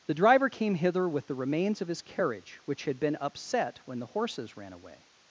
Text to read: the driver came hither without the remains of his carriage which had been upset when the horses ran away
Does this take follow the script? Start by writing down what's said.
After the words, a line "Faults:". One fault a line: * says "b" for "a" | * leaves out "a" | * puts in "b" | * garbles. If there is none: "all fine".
the driver came hither with the remains of his carriage which had been upset when the horses ran away
Faults:
* says "with" for "without"